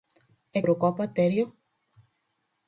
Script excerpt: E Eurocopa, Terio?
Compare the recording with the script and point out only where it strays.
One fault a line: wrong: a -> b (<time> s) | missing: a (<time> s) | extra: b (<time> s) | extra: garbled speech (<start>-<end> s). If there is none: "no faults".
no faults